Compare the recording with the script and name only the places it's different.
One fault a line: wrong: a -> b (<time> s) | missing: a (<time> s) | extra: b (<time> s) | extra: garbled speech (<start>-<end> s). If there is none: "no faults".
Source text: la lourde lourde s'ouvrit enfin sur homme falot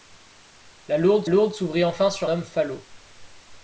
no faults